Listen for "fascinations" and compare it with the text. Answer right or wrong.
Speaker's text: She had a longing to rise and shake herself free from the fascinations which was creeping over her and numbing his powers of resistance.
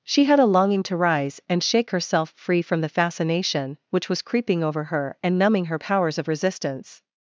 wrong